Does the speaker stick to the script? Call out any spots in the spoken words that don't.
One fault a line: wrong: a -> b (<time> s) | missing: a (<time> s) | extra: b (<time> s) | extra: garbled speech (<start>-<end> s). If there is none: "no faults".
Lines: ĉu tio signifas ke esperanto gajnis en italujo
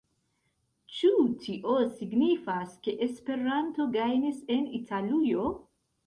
no faults